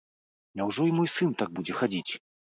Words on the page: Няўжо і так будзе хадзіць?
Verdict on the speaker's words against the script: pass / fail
fail